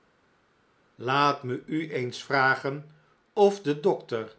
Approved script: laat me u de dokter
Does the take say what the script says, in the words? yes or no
no